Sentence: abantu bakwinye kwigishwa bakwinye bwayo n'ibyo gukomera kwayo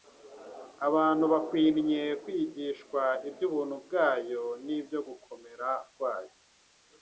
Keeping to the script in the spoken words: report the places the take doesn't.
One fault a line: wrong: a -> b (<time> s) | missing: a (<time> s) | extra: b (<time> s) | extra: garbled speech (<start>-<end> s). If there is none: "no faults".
wrong: bakwinye -> iby'ubuntu (3.3 s)